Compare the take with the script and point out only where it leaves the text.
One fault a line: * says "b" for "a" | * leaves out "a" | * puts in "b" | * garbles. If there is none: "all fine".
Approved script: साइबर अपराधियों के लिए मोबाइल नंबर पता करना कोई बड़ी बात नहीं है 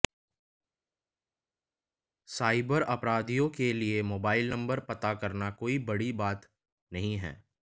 all fine